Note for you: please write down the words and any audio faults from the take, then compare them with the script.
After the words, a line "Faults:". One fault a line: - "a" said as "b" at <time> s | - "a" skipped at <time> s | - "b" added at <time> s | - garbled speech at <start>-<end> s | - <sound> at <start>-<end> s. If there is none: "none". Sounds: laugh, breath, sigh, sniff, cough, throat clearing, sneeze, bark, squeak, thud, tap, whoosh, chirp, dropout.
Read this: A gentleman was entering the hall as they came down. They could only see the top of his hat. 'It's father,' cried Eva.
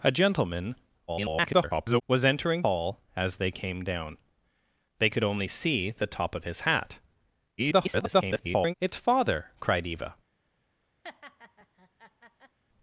A gentleman [garbled] was entering hall as they came down. They could only see the top of his hat. [garbled] 'It's father,' cried Eva.
Faults:
- garbled speech at 1.1-2.0 s
- "the" skipped at 2.6 s
- garbled speech at 7.6-8.7 s
- laugh at 11.0-12.6 s